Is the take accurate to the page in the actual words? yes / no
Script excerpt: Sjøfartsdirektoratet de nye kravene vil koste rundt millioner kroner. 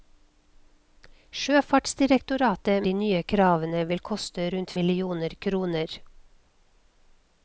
yes